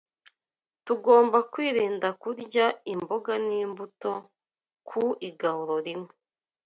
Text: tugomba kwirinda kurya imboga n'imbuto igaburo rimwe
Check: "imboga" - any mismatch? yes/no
no